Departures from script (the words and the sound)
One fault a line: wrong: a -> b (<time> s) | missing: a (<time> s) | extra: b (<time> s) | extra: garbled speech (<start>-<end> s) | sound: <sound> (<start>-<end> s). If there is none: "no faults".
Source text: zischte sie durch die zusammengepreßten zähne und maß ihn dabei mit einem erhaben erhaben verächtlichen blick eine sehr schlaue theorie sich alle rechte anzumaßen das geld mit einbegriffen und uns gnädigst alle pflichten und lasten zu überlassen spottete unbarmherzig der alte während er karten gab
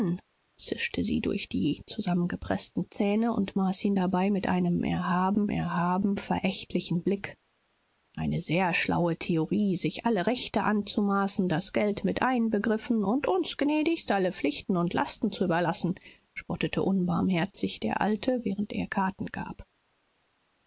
no faults